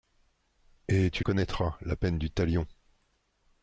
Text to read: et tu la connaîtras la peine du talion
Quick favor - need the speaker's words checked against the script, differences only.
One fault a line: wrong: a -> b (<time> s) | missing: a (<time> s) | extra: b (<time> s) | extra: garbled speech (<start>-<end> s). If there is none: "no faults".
missing: la (1.2 s)